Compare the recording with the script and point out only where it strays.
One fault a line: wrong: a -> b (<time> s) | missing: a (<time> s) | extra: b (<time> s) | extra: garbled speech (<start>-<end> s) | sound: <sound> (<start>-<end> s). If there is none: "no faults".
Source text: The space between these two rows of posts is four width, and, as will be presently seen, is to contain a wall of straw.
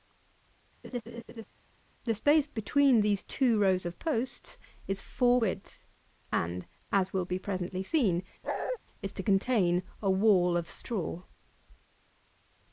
sound: laugh (0.8-1.5 s)
sound: bark (8.4-8.8 s)